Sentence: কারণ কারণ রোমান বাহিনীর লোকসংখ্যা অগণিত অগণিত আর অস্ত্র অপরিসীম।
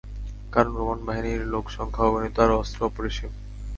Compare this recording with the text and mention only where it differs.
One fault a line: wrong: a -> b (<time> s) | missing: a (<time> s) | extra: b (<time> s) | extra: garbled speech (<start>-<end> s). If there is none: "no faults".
missing: কারণ (0.7 s)
missing: অগণিত (2.4 s)